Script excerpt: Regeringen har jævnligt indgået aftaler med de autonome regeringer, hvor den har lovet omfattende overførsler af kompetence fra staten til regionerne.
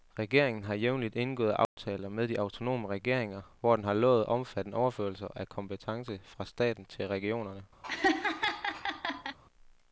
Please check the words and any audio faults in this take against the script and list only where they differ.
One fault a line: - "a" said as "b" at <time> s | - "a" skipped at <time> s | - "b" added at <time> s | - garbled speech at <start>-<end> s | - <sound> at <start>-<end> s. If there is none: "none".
- dropout at 1.6-1.8 s
- laugh at 7.8-9.4 s